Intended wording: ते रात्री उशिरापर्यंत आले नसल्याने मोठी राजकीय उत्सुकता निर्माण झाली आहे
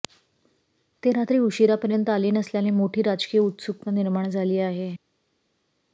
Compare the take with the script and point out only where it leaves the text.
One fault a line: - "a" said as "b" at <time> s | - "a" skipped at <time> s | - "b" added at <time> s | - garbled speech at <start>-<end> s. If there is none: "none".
none